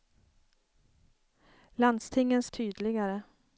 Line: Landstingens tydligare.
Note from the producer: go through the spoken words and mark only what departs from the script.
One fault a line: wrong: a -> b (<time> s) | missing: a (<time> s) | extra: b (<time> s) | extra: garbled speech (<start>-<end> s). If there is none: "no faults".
no faults